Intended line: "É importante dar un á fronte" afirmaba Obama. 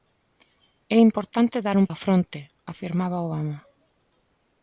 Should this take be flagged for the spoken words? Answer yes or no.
no